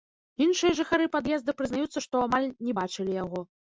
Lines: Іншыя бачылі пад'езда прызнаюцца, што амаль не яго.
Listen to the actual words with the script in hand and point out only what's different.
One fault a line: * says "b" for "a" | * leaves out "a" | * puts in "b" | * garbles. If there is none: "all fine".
* says "жыхары" for "бачылі"
* puts in "бачылі"